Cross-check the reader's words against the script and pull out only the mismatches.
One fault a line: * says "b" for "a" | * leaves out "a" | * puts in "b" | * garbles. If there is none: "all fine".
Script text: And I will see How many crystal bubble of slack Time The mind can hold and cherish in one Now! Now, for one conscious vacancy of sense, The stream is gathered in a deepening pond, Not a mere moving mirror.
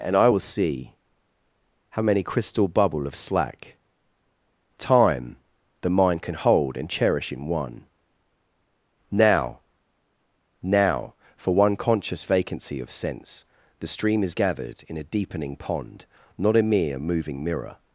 all fine